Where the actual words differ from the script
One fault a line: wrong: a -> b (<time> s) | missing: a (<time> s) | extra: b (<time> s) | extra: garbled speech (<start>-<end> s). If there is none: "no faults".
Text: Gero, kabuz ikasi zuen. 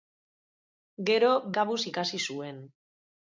no faults